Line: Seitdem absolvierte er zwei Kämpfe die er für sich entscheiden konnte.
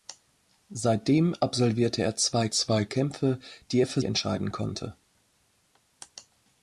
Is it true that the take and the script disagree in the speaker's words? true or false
true